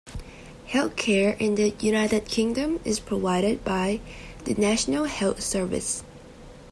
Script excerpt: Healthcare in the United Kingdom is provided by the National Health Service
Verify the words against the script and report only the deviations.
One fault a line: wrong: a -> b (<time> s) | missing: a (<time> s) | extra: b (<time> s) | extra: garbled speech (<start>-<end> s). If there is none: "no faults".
no faults